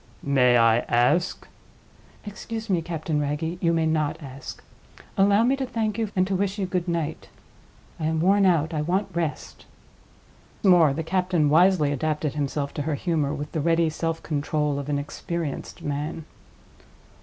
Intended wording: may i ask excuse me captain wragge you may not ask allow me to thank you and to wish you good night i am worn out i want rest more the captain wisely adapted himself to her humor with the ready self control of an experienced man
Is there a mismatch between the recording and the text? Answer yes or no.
no